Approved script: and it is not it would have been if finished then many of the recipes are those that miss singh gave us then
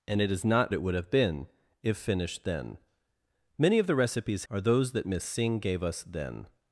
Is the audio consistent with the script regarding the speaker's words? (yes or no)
yes